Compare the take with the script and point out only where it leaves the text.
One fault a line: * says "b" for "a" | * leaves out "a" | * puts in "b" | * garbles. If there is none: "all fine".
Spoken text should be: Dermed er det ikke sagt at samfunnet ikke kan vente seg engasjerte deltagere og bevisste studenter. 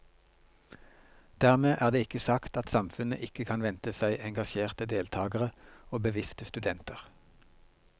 all fine